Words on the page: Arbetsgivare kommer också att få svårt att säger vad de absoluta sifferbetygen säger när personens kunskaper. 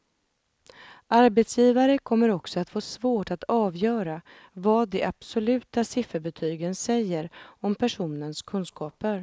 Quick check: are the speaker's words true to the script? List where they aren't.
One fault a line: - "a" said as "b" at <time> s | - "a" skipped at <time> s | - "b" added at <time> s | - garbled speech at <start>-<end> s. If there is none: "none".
- "säger" said as "avgöra" at 3.4 s
- "när" said as "om" at 7.4 s